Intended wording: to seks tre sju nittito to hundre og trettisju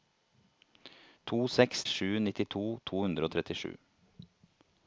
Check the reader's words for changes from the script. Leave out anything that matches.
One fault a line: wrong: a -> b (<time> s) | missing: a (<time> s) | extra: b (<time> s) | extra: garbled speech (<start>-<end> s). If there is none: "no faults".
missing: tre (1.8 s)